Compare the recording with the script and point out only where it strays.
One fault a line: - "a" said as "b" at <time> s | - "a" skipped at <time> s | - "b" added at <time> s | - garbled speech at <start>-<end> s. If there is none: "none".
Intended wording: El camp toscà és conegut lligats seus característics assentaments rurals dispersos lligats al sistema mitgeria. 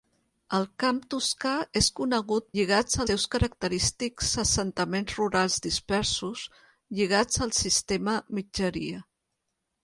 none